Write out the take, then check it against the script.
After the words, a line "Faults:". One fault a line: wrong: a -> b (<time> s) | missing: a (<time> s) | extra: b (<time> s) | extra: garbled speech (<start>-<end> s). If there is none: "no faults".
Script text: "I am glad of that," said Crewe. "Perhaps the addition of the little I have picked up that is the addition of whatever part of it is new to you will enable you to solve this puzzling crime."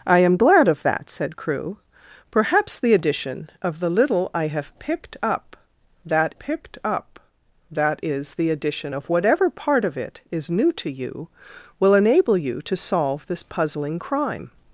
"I am glad of that," said Crewe. "Perhaps the addition of the little I have picked up that picked up that is the addition of whatever part of it is new to you will enable you to solve this puzzling crime."
Faults:
extra: picked up that (6.4 s)